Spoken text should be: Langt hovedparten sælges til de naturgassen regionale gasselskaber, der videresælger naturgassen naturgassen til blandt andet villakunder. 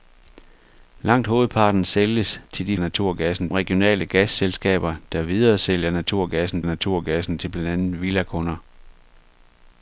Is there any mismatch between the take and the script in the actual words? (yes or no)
no